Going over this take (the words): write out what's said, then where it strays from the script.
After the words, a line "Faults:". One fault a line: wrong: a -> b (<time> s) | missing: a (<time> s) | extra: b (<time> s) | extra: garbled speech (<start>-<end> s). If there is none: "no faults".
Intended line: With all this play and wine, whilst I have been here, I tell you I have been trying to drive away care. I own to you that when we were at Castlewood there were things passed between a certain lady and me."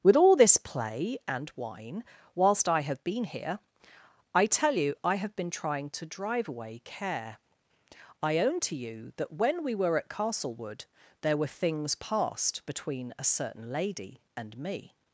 With all this play and wine, whilst I have been here, I tell you I have been trying to drive away care. I own to you that when we were at Castlewood there were things passed between a certain lady and me."
Faults:
no faults